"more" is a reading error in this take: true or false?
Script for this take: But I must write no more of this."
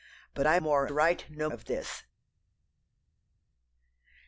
true